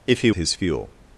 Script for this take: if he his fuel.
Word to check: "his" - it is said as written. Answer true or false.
true